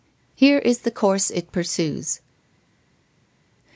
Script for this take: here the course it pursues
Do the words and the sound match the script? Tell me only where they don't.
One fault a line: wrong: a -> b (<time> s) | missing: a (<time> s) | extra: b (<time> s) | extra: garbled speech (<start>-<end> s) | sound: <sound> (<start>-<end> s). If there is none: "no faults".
extra: is (0.6 s)